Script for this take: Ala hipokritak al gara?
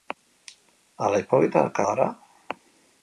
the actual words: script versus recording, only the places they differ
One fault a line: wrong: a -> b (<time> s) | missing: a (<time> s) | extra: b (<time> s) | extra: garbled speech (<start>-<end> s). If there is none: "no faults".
missing: al (1.8 s)